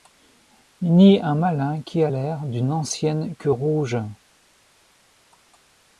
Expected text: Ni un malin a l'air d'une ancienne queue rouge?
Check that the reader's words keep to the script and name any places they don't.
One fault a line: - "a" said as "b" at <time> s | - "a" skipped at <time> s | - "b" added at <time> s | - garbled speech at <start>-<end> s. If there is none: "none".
- "qui" added at 1.8 s